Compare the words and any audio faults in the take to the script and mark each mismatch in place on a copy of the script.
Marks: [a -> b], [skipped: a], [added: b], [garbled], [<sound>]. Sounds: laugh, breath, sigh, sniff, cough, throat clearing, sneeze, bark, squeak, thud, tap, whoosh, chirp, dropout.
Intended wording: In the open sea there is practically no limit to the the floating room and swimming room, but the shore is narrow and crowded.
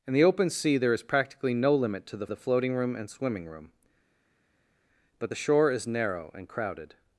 In the open sea there is practically no limit to the the floating room and swimming room, but the shore is narrow and crowded.